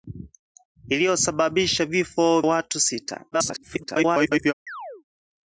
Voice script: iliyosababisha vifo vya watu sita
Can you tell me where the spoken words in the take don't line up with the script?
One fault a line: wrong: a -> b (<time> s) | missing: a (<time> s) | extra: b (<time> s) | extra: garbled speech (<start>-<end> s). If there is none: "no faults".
missing: vya (2.4 s)
extra: garbled speech (3.3-4.5 s)